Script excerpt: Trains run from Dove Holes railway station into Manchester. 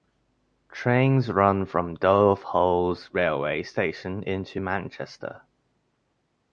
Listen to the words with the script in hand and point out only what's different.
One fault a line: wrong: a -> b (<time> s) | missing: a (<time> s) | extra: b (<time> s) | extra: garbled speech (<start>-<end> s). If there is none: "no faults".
no faults